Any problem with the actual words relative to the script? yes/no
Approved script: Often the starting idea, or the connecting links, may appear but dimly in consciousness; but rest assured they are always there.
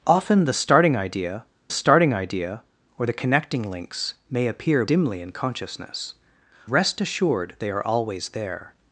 yes